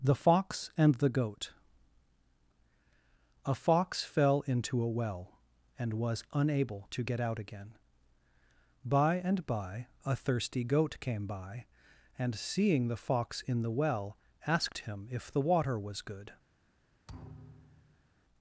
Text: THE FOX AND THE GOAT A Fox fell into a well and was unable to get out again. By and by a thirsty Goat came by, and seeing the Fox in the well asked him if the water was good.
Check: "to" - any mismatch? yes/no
no